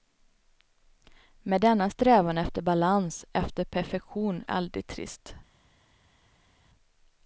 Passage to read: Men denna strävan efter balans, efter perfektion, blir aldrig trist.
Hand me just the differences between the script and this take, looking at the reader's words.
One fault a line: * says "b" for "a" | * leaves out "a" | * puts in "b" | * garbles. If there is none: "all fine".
* leaves out "blir"